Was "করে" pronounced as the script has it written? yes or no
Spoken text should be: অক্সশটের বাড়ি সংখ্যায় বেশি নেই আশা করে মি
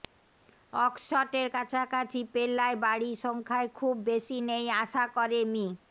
yes